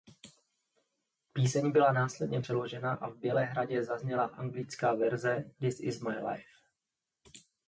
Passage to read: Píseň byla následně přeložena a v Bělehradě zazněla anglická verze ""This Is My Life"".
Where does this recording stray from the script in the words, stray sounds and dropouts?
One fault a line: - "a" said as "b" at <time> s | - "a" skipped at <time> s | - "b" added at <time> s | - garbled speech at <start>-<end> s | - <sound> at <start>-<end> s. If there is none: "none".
none